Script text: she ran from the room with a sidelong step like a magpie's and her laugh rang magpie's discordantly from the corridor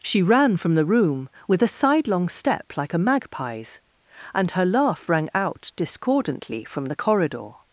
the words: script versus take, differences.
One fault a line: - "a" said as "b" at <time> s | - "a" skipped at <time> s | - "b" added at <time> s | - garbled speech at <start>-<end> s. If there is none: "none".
- "magpie's" said as "out" at 5.3 s